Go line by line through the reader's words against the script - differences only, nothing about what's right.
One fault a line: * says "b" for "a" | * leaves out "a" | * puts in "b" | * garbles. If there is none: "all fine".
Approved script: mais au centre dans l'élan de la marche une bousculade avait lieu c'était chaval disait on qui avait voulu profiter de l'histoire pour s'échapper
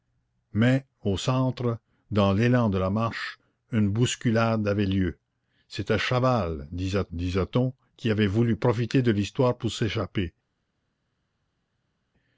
* puts in "disait"